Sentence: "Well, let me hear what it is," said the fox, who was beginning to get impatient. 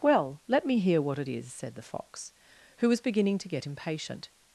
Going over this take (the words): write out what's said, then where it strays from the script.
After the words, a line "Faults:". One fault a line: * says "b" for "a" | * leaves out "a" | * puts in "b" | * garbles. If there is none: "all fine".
"Well, let me hear what it is," said the fox, who was beginning to get impatient.
Faults:
all fine